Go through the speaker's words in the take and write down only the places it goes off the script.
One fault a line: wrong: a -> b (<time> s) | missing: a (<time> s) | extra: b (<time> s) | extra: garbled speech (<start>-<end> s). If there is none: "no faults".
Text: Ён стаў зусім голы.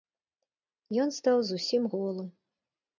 no faults